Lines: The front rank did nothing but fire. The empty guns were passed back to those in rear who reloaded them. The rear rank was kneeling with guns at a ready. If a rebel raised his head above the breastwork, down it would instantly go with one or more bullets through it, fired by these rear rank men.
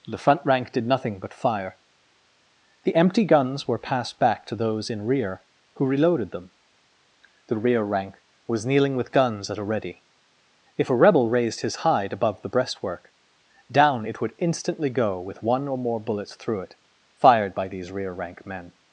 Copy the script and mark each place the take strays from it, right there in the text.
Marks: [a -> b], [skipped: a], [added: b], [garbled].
The front rank did nothing but fire. The empty guns were passed back to those in rear who reloaded them. The rear rank was kneeling with guns at a ready. If a rebel raised his [head -> hide] above the breastwork, down it would instantly go with one or more bullets through it, fired by these rear rank men.